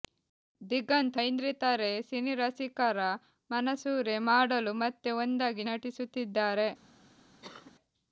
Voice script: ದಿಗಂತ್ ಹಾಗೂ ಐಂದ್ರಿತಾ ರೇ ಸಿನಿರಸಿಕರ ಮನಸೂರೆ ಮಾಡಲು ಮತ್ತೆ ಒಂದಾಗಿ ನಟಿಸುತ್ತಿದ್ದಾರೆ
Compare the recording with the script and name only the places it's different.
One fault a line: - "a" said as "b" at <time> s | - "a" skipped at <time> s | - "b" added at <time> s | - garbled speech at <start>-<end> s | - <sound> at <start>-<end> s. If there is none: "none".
- "ಹಾಗೂ" skipped at 1.2 s
- cough at 7.4-7.7 s